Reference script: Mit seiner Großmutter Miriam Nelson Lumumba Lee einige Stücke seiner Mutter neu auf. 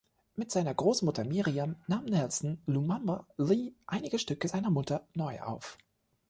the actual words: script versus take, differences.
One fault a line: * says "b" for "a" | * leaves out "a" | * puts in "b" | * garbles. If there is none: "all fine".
* puts in "nahm"